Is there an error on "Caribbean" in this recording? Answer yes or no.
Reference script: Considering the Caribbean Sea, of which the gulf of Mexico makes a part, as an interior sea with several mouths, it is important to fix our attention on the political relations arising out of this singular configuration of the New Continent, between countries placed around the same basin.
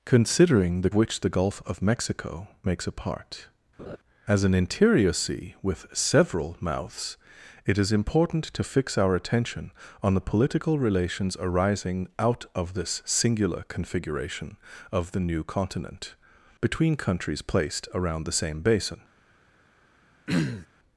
yes